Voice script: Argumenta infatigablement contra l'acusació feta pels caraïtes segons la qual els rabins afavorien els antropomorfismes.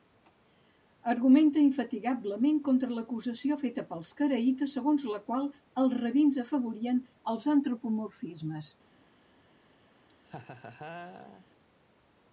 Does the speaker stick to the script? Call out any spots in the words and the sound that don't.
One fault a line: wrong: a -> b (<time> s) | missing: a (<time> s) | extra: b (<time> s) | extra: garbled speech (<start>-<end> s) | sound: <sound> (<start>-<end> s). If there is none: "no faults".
sound: laugh (10.1-11.5 s)